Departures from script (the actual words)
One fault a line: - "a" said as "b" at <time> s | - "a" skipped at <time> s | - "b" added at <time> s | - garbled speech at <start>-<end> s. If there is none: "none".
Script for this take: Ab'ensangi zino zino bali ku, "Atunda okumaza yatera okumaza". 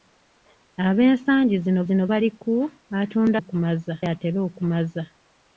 none